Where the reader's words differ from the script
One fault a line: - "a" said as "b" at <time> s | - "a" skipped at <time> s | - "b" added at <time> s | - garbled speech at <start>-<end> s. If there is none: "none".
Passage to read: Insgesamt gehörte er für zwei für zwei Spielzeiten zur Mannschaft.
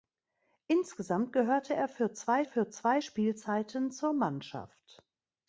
none